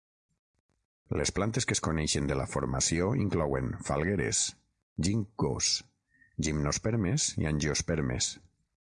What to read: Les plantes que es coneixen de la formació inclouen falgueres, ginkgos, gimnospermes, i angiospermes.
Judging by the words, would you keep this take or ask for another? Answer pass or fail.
pass